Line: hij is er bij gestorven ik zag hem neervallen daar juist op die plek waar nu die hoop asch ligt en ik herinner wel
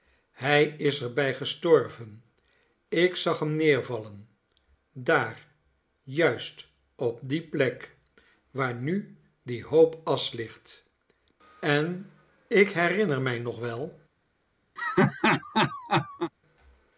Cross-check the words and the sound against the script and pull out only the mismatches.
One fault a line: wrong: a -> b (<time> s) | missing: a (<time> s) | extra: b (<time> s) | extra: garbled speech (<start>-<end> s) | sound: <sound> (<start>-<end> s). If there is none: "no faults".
extra: mij nog (13.2 s)
sound: laugh (14.8-16.3 s)